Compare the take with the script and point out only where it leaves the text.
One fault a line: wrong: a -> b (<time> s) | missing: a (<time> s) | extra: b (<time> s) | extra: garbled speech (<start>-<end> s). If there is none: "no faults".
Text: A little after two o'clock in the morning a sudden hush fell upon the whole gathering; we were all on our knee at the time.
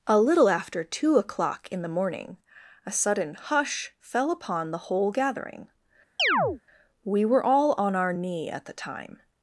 no faults